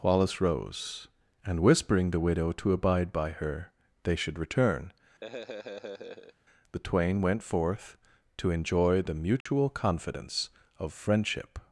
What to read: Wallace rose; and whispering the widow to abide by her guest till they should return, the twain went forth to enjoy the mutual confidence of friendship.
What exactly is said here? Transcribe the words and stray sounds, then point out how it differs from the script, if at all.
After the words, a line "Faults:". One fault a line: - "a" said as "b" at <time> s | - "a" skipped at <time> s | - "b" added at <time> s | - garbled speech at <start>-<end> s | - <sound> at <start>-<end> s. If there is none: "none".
Wallace rose; and whispering the widow to abide by her they should return, the twain went forth to enjoy the mutual confidence of friendship.
Faults:
- "guest till" skipped at 3.7 s
- laugh at 5.2-6.3 s
- dropout at 9.4-9.5 s